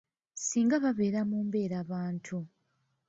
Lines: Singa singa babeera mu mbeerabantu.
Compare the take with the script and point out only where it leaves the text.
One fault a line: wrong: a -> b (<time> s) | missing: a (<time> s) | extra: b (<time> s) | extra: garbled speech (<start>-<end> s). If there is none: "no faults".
missing: singa (0.8 s)